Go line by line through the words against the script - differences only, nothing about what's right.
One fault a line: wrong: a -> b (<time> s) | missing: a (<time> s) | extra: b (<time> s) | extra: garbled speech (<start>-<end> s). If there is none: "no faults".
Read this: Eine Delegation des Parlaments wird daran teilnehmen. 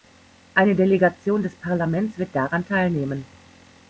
no faults